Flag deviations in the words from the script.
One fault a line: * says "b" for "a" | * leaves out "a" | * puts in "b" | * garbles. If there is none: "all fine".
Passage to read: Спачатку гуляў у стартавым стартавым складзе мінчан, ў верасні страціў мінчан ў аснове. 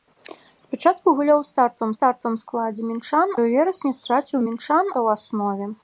all fine